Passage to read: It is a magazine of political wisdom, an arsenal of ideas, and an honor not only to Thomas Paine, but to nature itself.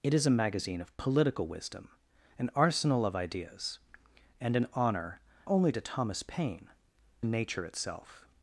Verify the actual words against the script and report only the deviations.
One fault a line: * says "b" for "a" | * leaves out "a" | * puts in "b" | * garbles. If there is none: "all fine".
* leaves out "not"
* leaves out "but to"